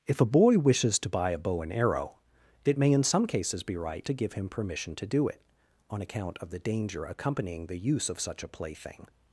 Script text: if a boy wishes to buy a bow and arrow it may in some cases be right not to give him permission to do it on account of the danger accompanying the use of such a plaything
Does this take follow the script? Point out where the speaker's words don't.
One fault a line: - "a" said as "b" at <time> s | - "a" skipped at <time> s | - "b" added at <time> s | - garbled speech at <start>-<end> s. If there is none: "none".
- "not" skipped at 4.1 s